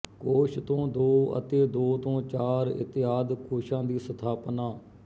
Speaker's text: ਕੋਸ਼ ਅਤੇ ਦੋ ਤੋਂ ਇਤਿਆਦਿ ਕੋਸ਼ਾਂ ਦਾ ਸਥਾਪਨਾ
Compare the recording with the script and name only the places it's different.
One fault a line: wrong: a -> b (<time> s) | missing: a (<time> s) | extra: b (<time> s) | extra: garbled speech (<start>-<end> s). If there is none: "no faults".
extra: ਤੋਂ ਦੋ (0.6 s)
extra: ਚਾਰ (2.2 s)
wrong: ਦਾ -> ਦੀ (3.8 s)